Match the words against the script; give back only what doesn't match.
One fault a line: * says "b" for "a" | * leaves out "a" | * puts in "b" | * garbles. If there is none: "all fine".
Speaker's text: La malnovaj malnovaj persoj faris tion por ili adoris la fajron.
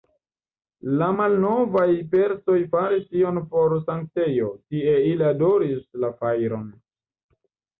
* leaves out "malnovaj"
* puts in "sanktejo tie"